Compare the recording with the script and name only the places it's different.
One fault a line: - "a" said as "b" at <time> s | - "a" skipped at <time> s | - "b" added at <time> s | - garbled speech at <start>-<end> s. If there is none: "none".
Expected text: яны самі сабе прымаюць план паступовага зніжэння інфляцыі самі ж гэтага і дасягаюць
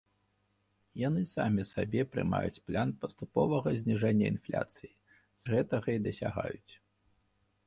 - "самі" skipped at 4.9 s